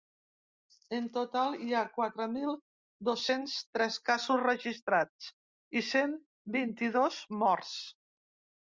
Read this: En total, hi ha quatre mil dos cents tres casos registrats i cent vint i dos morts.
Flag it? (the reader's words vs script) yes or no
no